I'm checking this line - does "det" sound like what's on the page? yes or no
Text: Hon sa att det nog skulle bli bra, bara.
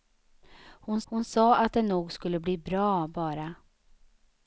yes